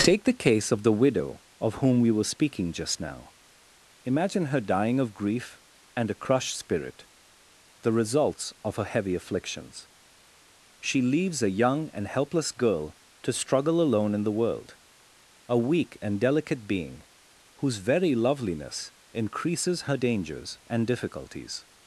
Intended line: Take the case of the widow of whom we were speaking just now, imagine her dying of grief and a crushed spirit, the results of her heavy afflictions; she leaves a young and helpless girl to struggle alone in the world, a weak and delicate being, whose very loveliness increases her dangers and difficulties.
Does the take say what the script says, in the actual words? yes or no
yes